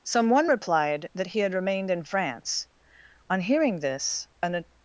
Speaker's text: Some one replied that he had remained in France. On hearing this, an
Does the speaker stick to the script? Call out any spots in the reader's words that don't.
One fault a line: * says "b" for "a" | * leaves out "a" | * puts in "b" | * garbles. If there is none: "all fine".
all fine